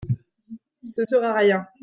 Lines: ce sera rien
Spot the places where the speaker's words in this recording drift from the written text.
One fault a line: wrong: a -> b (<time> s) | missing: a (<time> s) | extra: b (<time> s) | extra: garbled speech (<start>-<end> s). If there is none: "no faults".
no faults